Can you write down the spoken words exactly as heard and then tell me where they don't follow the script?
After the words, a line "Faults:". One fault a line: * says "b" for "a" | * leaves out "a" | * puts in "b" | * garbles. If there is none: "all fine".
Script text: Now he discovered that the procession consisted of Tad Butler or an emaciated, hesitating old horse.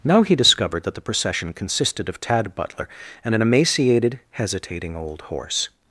Now he discovered that the procession consisted of Tad Butler and an emaciated, hesitating old horse.
Faults:
* says "and" for "or"